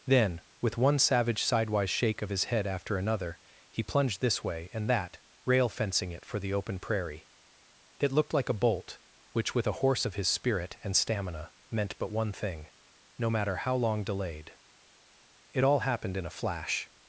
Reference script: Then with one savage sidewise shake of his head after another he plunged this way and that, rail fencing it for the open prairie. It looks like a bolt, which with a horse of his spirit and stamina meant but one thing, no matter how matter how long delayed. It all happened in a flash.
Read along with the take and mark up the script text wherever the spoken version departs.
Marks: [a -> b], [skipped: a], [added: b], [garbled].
Then with one savage sidewise shake of his head after another he plunged this way and that, rail fencing it for the open prairie. It [looks -> looked] like a bolt, which with a horse of his spirit and stamina meant but one thing, no matter how [skipped: matter how] long delayed. It all happened in a flash.